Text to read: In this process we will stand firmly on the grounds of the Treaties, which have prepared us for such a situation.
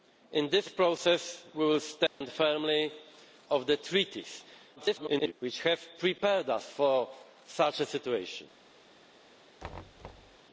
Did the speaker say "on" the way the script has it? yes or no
no